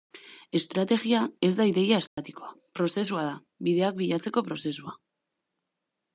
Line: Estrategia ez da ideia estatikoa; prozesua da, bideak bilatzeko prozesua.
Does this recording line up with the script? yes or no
yes